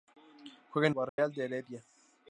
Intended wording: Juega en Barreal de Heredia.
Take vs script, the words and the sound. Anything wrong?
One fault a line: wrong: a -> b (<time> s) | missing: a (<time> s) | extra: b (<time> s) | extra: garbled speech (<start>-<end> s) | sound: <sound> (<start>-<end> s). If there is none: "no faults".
sound: dropout (1.1-1.2 s)